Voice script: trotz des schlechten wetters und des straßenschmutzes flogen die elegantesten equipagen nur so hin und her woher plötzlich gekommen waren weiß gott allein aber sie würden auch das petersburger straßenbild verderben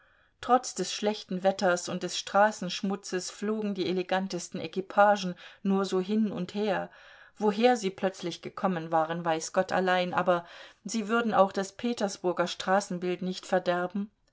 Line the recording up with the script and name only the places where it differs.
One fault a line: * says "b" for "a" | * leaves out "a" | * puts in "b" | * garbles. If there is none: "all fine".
* puts in "sie"
* puts in "nicht"